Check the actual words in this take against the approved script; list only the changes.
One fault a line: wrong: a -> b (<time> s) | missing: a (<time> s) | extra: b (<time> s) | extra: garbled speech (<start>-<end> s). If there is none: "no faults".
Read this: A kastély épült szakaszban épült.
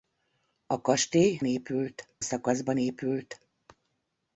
no faults